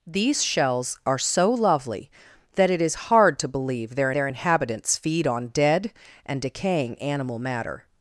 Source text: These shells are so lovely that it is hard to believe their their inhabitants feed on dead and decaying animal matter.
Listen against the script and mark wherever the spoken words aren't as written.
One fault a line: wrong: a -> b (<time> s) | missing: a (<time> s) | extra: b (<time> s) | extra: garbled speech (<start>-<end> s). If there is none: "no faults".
no faults